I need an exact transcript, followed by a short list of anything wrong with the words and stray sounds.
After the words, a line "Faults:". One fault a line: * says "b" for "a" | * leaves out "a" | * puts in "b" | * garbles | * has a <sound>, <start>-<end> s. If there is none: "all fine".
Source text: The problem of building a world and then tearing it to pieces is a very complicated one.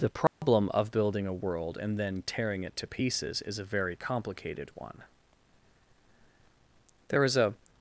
The problem of building a world and then tearing it to pieces is a very complicated one. There is a
Faults:
* has a dropout, 0.3-0.4 s
* puts in "There is a"